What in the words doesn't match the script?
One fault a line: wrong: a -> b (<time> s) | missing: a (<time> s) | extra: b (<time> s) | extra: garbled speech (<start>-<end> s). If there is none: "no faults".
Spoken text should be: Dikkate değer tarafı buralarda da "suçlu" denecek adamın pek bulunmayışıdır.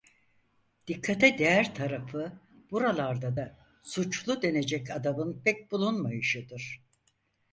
no faults